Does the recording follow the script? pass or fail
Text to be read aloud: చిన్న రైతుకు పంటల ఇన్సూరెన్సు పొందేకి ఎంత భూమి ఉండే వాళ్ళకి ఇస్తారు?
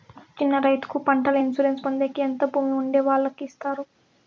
pass